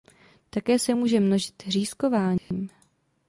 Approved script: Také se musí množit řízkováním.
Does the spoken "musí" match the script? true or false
false